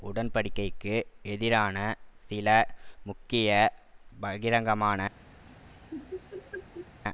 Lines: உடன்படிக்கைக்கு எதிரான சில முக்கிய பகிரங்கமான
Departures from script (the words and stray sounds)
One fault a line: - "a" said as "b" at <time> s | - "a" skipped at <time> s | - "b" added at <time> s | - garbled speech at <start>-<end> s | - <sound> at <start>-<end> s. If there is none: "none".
- laugh at 5.5-7.0 s